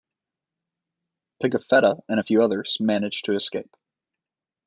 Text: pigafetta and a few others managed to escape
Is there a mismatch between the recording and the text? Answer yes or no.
no